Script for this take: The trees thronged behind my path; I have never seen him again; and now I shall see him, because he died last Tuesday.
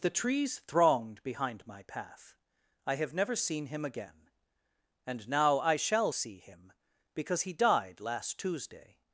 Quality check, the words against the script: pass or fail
pass